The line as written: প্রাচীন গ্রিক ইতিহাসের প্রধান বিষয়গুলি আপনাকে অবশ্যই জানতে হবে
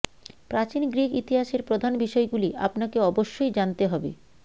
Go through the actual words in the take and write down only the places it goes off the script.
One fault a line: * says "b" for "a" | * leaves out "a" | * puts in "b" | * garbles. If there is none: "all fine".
all fine